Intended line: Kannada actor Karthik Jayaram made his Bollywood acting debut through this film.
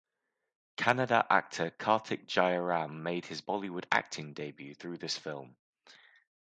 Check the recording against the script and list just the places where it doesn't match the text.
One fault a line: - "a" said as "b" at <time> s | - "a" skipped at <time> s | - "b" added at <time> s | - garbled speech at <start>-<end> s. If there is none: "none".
none